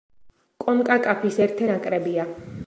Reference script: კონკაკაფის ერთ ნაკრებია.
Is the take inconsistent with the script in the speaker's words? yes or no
no